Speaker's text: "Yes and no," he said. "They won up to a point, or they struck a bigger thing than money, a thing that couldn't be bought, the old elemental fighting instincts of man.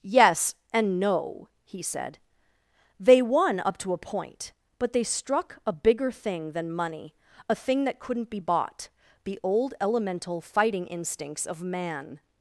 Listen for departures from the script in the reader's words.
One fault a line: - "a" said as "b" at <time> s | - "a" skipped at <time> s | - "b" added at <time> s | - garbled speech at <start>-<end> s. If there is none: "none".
- "or" said as "but" at 4.8 s